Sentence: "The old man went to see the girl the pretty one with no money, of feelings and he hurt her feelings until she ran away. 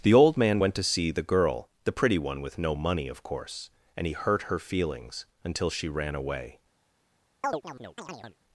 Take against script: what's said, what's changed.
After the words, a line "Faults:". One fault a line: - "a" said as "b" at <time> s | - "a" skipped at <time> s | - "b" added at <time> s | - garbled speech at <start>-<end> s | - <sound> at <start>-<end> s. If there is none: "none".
"The old man went to see the girl the pretty one with no money, of course and he hurt her feelings until she ran away.
Faults:
- "feelings" said as "course" at 3.2 s
- chirp at 7.4-8.4 s